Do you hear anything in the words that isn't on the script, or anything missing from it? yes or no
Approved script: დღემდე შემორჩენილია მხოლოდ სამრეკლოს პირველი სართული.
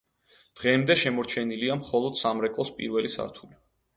no